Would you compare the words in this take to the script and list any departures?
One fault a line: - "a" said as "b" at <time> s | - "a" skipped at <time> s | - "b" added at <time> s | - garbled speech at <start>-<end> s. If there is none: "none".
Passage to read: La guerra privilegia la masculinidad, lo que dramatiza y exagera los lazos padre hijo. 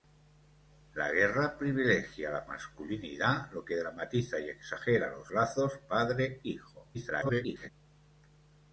- garbled speech at 6.9-7.7 s